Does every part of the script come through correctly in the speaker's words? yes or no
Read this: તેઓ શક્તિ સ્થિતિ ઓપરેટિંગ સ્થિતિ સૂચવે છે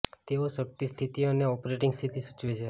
no